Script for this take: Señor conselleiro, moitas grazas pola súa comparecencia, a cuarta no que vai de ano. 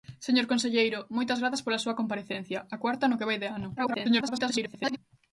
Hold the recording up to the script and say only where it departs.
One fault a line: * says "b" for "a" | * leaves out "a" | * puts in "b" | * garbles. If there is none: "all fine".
* garbles